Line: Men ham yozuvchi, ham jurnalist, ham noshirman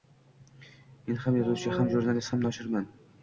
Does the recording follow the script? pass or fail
pass